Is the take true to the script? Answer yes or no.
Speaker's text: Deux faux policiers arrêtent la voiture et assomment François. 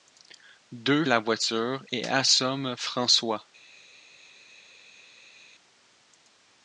no